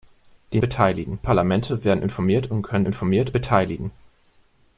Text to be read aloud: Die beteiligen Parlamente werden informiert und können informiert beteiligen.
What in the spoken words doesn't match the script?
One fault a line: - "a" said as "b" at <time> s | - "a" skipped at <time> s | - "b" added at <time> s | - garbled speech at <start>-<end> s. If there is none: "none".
none